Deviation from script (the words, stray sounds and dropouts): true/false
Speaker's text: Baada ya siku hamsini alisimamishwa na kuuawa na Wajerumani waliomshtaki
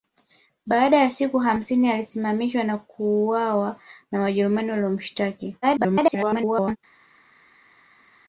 true